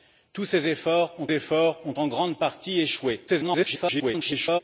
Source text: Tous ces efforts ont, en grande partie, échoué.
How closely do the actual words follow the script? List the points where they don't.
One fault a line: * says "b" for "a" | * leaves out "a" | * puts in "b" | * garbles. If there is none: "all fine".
* puts in "efforts ont"
* garbles